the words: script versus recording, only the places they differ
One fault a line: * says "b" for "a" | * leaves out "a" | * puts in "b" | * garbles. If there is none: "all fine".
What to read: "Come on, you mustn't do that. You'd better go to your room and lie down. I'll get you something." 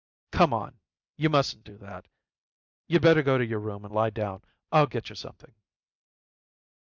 all fine